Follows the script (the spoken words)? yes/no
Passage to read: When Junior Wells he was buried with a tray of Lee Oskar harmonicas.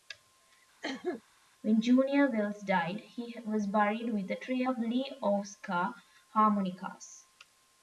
no